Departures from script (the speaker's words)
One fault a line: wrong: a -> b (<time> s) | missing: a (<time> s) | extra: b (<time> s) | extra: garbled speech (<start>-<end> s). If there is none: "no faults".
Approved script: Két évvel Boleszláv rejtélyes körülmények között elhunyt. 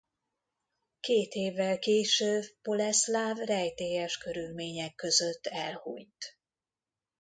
extra: később (1.8 s)